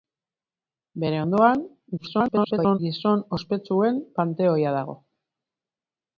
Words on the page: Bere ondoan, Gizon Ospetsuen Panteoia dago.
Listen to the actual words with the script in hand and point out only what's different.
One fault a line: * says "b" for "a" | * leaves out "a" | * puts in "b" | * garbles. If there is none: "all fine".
* garbles